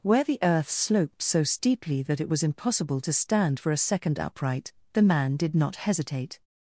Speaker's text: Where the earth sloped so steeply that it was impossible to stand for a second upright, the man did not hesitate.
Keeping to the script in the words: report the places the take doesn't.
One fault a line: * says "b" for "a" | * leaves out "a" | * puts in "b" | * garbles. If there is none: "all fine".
all fine